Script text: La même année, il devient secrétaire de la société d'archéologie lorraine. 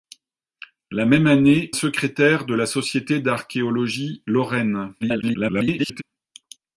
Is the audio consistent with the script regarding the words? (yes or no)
no